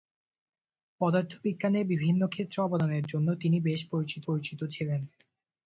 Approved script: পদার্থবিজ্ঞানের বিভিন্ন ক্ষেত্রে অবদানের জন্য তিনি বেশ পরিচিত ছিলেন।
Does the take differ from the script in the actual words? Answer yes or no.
yes